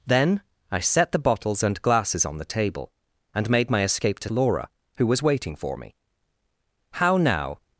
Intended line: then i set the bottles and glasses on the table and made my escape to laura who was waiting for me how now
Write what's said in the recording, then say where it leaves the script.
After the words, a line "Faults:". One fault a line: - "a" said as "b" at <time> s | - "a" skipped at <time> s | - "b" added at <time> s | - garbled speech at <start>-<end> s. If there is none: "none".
then i set the bottles and glasses on the table and made my escape to laura who was waiting for me how now
Faults:
none